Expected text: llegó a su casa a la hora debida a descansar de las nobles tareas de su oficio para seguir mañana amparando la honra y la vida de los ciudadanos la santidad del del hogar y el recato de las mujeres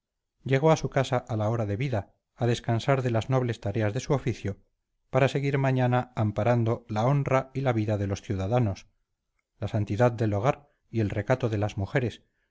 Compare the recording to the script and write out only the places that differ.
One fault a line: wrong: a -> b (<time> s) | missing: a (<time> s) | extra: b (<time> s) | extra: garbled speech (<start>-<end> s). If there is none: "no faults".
missing: del (10.3 s)